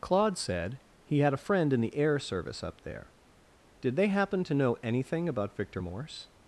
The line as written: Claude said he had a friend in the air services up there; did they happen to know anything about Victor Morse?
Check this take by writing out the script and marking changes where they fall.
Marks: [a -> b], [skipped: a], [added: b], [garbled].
Claude said he had a friend in the air [services -> service] up there; did they happen to know anything about Victor Morse?